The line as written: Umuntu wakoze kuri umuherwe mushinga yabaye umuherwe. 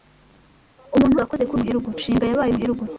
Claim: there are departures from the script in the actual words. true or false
false